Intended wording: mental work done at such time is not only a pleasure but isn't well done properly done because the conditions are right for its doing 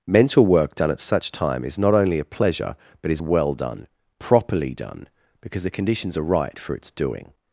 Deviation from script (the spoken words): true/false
true